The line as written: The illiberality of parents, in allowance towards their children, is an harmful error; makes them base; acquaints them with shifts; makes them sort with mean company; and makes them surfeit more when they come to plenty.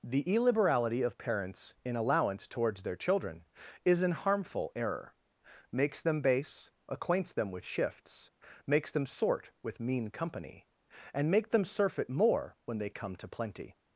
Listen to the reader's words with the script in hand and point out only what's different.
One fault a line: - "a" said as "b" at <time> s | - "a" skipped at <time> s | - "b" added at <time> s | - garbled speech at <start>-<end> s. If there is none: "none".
- "makes" said as "make" at 11.3 s